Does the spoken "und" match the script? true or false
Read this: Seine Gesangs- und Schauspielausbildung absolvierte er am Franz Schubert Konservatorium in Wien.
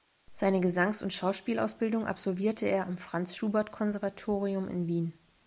true